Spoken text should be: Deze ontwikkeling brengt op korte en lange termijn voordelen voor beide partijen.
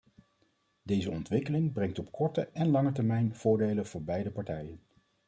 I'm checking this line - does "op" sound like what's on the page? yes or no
yes